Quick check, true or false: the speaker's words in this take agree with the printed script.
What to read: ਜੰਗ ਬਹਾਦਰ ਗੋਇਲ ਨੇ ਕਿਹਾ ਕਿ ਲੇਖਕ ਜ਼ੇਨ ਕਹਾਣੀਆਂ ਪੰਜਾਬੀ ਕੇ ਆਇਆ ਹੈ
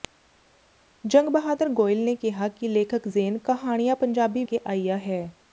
true